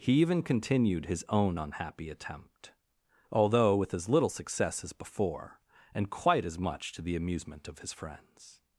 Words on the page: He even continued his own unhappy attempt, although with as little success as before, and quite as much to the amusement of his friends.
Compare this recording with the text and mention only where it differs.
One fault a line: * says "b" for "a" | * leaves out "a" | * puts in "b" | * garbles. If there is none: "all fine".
all fine